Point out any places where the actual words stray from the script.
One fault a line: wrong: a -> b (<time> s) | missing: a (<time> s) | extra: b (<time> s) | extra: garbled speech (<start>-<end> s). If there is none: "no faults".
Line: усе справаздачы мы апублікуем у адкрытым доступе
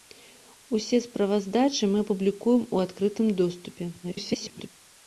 extra: garbled speech (4.0-4.7 s)